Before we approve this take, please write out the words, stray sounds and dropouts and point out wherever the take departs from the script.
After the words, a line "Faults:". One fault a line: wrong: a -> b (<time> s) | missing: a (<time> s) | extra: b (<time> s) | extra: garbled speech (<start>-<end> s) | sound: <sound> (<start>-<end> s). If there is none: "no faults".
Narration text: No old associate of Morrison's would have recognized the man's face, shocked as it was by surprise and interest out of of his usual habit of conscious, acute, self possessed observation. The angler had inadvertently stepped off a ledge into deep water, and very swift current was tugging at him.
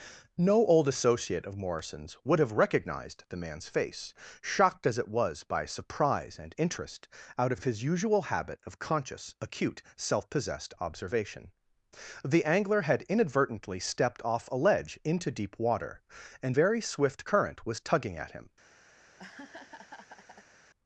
No old associate of Morrison's would have recognized the man's face, shocked as it was by surprise and interest out of of his usual habit of conscious, acute, self possessed observation. The angler had inadvertently stepped off a ledge into deep water, and very swift current was tugging at him.
Faults:
sound: laugh (19.0-20.5 s)